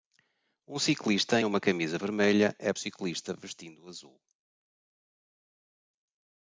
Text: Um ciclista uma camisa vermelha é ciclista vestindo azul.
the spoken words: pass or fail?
pass